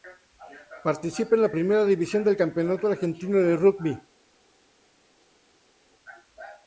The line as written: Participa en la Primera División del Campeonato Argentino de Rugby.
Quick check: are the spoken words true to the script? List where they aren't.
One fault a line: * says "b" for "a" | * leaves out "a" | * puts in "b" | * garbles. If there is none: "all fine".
all fine